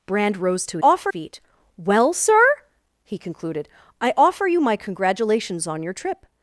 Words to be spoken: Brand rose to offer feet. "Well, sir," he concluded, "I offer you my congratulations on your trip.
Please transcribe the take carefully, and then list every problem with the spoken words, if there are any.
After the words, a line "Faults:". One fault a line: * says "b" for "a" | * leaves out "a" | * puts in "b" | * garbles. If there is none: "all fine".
Brand rose to offer feet. "Well, sir," he concluded, "I offer you my congratulations on your trip.
Faults:
all fine